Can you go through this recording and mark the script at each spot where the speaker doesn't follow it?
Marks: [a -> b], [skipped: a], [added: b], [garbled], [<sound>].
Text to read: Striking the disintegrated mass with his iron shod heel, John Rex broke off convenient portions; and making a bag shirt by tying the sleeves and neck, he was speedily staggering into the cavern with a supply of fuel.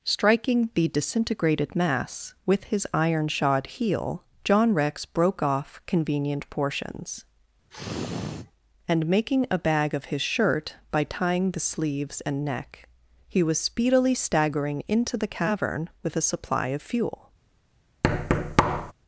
Striking the disintegrated mass with his iron shod heel, John Rex broke off convenient portions; [sniff] and making a bag [added: of his] shirt by tying the sleeves and neck, he was speedily staggering into the cavern with a supply of fuel. [thud]